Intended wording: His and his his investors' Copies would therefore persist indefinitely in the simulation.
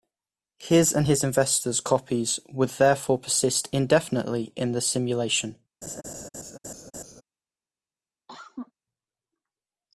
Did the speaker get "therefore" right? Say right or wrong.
right